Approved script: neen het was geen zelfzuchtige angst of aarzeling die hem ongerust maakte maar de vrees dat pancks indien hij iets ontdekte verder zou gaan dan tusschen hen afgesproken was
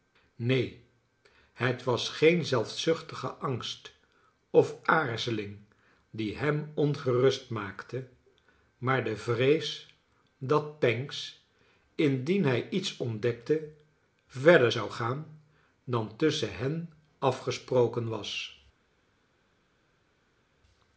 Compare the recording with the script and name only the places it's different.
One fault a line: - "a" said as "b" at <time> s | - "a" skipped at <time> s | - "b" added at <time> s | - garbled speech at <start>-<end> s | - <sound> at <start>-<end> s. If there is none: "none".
none